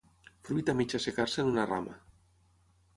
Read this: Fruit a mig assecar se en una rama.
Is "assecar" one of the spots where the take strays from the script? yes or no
no